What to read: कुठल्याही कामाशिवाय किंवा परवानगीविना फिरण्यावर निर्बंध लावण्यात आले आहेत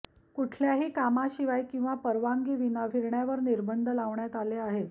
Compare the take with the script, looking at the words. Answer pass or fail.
pass